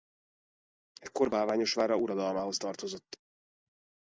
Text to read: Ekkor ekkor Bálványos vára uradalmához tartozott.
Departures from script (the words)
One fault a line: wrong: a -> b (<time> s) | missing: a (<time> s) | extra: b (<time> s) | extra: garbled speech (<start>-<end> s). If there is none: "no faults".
missing: ekkor (1.3 s)